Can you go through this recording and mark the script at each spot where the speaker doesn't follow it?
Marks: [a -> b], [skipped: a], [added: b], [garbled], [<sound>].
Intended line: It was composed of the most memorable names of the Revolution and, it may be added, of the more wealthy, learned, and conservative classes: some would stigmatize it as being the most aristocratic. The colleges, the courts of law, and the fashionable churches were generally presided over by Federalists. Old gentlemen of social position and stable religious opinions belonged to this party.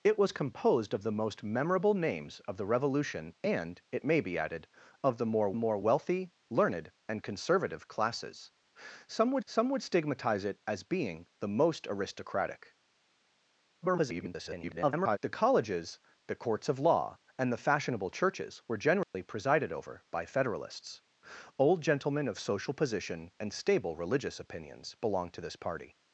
It was composed of the most memorable names of the Revolution and, it may be added, of the more [added: more] wealthy, learned, and conservative classes: some would [added: some would] stigmatize it as being the most aristocratic. [garbled] The colleges, the courts of law, and the fashionable churches were generally [dropout] presided over by Federalists. Old gentlemen of social position and stable religious opinions belonged to this party.